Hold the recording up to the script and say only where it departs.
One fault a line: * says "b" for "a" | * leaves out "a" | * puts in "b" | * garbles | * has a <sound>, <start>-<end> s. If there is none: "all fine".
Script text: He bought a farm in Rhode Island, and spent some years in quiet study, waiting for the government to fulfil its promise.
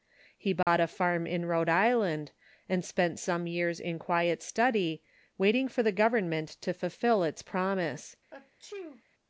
* has a dropout, 0.6-0.7 s
* has a sneeze, 8.3-9.0 s